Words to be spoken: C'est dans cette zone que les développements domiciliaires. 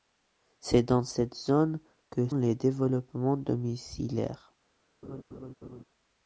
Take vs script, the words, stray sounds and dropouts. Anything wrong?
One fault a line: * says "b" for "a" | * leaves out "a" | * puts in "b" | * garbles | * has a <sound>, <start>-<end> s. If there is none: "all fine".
* has a laugh, 5.0-5.8 s